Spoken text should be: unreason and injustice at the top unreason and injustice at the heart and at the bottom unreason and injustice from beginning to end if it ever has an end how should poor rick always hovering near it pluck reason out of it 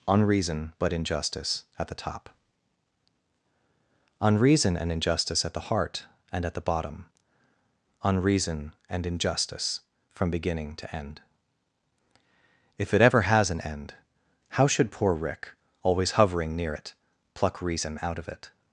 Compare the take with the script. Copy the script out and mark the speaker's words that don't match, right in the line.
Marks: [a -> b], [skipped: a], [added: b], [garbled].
unreason [and -> but] injustice at the top unreason and injustice at the heart and at the bottom unreason and injustice from beginning to end if it ever has an end how should poor rick always hovering near it pluck reason out of it